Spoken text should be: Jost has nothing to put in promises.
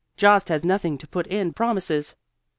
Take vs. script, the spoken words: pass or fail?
pass